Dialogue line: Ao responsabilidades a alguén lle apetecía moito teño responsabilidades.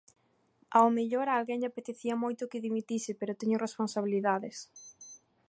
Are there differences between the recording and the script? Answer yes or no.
yes